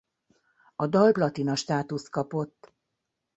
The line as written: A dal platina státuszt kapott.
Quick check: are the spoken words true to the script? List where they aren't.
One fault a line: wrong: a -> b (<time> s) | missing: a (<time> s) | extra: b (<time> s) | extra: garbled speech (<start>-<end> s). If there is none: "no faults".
no faults